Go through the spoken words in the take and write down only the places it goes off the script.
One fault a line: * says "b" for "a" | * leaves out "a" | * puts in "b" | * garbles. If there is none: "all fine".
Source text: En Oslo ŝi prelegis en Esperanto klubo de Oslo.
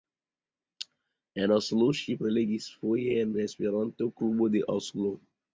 * puts in "foje"